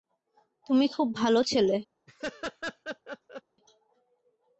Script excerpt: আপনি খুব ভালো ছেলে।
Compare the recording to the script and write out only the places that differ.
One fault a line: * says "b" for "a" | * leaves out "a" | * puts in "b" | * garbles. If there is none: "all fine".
* says "তুমি" for "আপনি"